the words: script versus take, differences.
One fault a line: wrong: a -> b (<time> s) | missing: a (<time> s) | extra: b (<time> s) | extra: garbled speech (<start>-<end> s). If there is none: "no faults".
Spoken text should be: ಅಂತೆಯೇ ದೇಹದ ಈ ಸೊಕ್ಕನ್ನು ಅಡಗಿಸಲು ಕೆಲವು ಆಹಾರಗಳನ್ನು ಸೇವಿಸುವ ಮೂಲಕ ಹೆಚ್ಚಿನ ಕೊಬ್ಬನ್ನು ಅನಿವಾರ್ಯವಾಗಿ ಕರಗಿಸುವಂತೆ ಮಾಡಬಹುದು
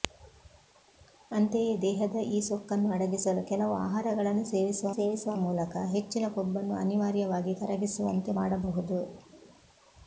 extra: ಸೇವಿಸುವ (4.9 s)